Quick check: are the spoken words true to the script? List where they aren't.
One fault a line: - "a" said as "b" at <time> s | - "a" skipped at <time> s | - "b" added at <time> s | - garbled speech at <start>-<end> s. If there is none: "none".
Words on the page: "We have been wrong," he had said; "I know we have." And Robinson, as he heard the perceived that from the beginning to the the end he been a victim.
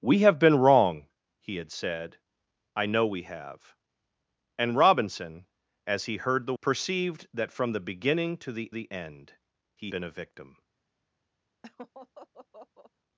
none